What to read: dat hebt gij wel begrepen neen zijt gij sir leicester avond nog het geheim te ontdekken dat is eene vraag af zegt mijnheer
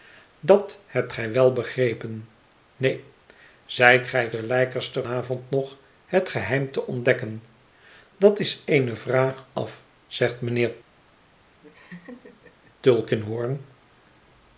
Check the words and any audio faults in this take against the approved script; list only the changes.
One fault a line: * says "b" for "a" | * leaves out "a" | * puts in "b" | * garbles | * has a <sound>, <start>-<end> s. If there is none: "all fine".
* has a laugh, 11.6-12.8 s